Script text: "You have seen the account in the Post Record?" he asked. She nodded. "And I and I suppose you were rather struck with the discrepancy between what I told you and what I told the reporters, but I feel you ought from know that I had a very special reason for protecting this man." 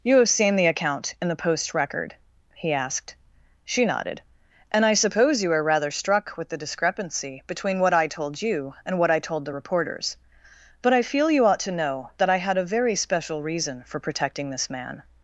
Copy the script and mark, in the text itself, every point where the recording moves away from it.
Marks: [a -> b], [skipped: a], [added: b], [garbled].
"You have seen the account in the Post Record?" he asked. She nodded. "And I [skipped: and I] suppose you [were -> are] rather struck with the discrepancy between what I told you and what I told the reporters, but I feel you ought [from -> to] know that I had a very special reason for protecting this man."